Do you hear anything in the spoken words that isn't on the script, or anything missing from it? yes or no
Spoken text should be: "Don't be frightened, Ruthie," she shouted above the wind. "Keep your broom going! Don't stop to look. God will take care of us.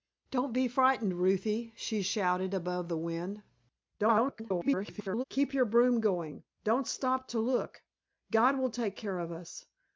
yes